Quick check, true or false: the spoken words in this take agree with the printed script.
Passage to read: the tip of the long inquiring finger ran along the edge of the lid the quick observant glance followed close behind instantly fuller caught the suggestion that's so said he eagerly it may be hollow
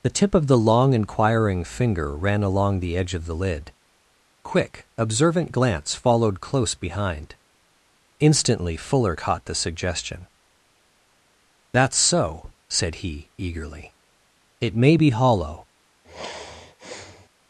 false